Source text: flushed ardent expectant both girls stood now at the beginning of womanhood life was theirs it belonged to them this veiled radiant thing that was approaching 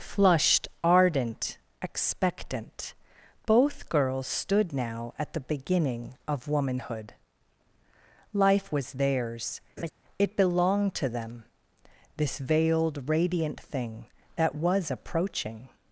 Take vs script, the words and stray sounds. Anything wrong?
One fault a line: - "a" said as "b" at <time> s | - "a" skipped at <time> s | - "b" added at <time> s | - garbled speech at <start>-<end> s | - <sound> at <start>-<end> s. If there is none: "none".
- laugh at 9.8-9.9 s